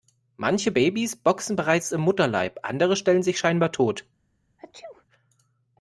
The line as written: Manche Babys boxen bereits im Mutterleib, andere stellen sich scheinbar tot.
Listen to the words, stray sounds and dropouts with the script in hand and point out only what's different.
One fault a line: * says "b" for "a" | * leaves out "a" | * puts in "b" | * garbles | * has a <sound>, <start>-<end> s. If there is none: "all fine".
* has a sneeze, 4.6-5.1 s